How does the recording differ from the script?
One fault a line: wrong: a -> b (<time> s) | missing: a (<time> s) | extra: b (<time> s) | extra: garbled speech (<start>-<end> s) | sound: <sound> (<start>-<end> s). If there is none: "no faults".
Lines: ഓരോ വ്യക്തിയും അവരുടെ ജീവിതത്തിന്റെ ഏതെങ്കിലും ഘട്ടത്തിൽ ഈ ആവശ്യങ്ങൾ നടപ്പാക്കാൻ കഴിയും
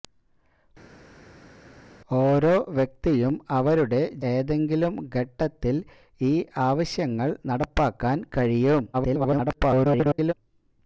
missing: ജീവിതത്തിന്റെ (4.0 s)
extra: garbled speech (8.9-10.3 s)